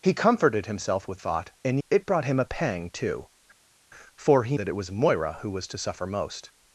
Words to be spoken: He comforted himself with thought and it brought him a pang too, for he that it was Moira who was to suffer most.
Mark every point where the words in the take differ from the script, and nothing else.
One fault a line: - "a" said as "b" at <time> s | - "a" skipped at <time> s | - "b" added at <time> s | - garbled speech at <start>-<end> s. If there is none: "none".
none